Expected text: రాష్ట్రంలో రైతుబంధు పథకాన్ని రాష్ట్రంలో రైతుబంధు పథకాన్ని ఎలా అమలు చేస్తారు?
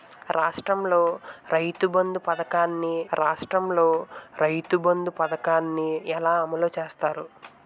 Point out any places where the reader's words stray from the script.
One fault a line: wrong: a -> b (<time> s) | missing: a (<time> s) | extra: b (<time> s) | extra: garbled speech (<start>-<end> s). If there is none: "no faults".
no faults